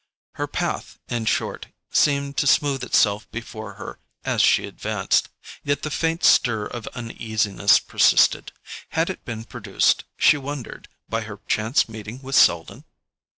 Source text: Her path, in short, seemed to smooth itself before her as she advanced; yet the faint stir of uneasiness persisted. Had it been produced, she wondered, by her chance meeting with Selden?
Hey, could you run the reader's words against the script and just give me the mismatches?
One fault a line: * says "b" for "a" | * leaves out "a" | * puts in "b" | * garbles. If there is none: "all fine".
all fine